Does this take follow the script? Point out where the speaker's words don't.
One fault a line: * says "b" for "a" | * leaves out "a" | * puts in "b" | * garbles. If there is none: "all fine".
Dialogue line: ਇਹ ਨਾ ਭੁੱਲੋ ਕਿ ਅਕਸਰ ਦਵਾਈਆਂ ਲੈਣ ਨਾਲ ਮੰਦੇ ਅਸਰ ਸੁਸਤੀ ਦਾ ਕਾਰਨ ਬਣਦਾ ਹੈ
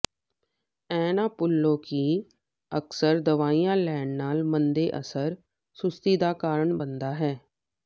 all fine